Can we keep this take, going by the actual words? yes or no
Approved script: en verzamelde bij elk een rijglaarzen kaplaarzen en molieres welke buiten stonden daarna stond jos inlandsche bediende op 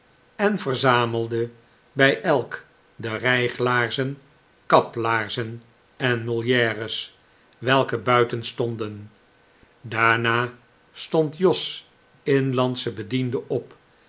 no